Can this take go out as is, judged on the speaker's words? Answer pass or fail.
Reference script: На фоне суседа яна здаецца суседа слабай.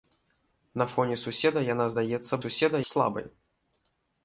pass